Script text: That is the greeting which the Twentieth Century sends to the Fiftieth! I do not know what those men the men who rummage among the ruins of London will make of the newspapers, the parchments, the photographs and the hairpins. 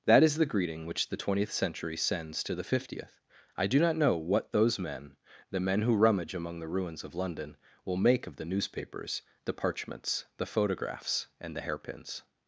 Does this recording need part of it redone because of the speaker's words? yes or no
no